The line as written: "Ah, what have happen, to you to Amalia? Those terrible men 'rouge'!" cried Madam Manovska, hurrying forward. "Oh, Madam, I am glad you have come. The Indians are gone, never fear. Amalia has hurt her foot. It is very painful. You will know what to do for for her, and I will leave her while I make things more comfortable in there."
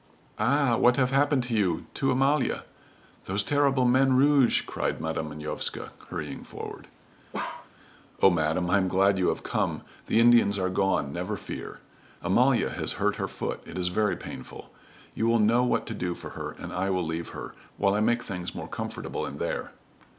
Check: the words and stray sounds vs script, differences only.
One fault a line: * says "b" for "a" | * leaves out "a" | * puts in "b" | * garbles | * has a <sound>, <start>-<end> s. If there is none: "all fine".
* has a bark, 7.3-7.7 s
* leaves out "for"